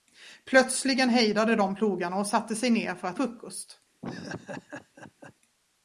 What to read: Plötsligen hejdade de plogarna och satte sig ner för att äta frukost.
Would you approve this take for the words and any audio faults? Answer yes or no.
no